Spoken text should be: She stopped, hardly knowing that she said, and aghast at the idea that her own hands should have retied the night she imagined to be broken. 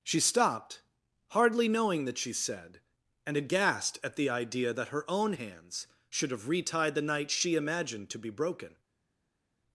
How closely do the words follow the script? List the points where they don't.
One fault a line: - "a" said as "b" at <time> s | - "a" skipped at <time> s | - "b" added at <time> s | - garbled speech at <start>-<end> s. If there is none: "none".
none